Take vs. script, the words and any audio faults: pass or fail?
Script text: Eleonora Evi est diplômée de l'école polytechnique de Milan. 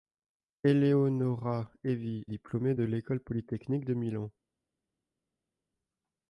fail